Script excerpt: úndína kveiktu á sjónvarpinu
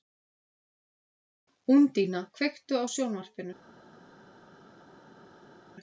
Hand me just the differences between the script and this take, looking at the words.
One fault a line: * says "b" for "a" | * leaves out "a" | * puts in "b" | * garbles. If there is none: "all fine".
all fine